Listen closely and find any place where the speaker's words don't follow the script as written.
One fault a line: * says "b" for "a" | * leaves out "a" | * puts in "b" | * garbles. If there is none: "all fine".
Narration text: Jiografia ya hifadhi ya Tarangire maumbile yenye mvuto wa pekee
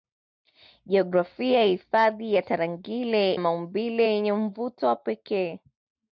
all fine